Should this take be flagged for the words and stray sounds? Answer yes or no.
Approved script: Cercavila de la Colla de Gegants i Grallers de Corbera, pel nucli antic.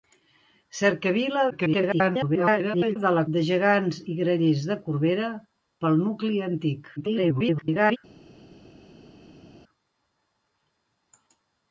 yes